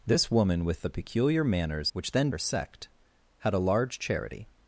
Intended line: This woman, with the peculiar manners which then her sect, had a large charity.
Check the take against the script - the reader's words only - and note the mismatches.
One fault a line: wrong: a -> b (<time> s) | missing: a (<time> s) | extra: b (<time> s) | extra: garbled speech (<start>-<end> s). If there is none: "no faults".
no faults